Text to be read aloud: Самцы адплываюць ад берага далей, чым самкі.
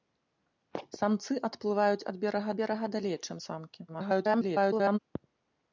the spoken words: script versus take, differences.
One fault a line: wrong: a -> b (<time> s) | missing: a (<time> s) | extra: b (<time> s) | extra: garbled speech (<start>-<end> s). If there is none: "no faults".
extra: берага (2.6 s)
extra: garbled speech (3.9-5.0 s)